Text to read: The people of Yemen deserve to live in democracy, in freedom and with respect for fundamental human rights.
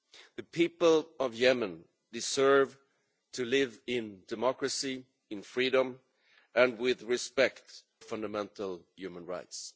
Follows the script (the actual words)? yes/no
no